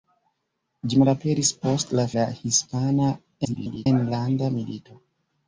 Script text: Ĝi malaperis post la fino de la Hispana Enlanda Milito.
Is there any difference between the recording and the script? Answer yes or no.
yes